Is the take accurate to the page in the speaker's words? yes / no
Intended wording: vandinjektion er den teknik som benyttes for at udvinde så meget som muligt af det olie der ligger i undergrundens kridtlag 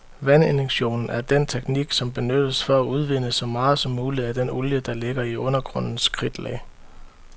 no